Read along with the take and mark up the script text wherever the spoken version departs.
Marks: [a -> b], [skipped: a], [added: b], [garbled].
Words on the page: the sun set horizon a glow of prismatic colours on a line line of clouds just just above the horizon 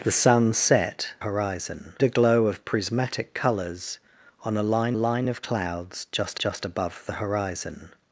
the sun set horizon a glow of prismatic colours on a line line of clouds just just above the horizon